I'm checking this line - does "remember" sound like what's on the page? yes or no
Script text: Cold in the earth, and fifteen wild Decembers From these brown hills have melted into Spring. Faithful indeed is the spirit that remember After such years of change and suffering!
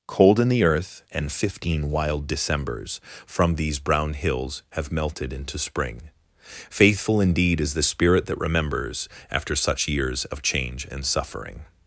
no